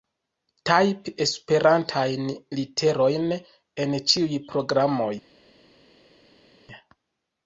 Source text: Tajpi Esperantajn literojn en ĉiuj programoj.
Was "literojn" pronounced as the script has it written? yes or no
yes